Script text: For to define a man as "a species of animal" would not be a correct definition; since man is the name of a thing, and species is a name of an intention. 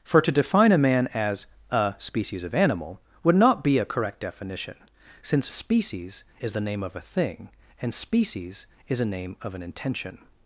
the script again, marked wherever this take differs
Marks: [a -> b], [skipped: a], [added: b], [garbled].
For to define a man as "a species of animal" would not be a correct definition; since [man -> species] is the name of a thing, and species is a name of an intention.